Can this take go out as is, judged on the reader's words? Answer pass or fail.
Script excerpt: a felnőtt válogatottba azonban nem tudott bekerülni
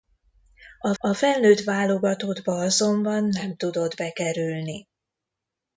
fail